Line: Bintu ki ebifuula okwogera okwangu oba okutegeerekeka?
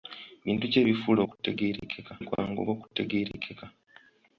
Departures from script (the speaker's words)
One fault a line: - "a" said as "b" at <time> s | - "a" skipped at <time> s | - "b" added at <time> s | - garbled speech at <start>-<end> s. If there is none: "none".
- "okwogera" said as "okutegeerekeka" at 1.2 s